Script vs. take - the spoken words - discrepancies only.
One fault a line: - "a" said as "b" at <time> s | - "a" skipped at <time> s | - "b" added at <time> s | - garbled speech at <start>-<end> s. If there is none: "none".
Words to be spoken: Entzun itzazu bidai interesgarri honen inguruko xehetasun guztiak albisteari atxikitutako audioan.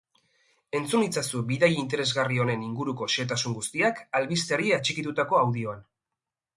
none